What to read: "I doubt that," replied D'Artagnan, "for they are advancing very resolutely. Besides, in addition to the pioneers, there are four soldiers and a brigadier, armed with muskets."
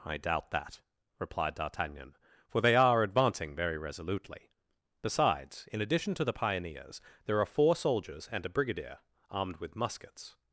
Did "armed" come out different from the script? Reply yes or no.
no